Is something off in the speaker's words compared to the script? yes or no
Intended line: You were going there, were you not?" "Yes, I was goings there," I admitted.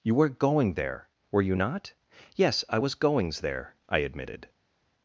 no